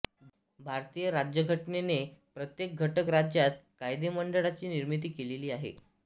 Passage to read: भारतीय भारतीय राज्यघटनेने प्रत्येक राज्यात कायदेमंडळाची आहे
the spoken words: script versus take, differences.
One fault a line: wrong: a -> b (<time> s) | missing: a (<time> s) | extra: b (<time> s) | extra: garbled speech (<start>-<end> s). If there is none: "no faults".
missing: भारतीय (1.1 s)
extra: घटक (2.8 s)
extra: निर्मिती केलेली (4.7 s)